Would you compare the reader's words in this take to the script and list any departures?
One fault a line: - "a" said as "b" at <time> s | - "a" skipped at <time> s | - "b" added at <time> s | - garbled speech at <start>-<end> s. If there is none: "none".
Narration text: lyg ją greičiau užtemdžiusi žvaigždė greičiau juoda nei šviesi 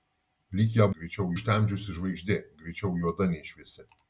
none